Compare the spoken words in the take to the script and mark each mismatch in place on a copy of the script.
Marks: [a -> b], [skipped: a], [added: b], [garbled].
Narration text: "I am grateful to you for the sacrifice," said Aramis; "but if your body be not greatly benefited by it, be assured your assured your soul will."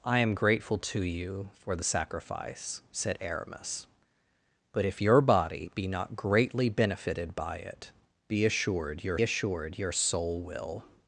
"I am grateful to you for the sacrifice," said Aramis; "but if your body be not greatly benefited by it, be assured your assured your soul will."